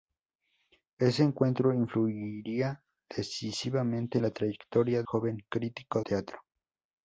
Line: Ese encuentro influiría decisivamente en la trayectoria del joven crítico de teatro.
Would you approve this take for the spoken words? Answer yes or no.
no